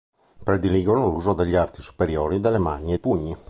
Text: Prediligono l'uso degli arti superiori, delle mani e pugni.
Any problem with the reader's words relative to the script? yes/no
no